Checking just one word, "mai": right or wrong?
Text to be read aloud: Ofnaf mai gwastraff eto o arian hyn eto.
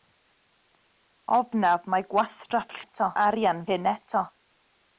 right